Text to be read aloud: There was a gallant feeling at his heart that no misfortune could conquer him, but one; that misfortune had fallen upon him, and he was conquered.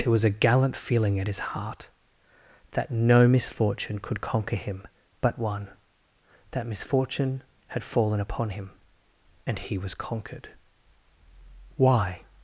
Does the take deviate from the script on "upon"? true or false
false